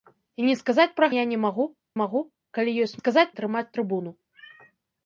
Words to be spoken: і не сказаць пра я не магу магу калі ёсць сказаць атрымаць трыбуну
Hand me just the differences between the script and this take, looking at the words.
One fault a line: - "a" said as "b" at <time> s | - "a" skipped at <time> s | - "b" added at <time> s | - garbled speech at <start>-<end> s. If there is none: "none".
none